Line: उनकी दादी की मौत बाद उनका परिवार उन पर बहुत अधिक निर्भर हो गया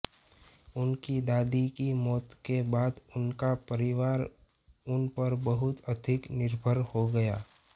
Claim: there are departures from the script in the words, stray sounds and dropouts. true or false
true